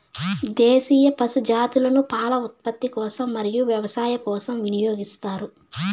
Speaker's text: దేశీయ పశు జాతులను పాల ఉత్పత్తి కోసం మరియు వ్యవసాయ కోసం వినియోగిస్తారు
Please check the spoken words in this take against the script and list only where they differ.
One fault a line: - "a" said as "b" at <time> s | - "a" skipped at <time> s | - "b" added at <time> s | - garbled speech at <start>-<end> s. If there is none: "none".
none